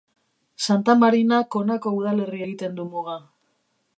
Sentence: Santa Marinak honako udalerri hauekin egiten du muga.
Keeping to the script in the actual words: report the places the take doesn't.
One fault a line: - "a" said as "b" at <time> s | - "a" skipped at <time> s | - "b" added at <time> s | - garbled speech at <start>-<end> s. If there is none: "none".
- "hauekin" skipped at 2.4 s